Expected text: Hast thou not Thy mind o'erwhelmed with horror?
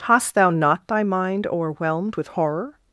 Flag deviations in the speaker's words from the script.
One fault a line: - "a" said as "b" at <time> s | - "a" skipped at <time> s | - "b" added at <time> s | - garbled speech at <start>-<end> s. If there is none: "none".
none